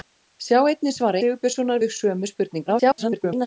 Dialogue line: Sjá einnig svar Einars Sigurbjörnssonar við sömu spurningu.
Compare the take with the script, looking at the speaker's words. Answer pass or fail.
fail